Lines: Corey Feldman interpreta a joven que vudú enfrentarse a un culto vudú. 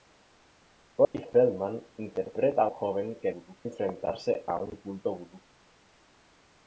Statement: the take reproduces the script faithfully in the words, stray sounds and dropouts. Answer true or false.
false